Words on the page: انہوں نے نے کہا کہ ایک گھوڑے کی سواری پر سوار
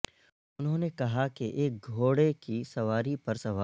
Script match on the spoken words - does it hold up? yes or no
no